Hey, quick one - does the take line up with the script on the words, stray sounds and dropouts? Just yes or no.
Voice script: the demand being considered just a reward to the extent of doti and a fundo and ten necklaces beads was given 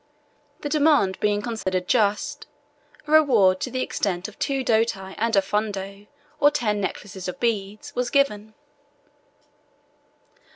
no